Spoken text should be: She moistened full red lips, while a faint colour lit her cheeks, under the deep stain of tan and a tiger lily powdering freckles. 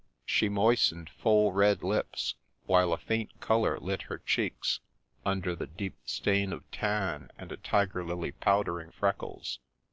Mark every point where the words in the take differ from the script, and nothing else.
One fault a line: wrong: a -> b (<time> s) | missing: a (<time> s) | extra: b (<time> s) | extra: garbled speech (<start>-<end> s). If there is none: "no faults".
no faults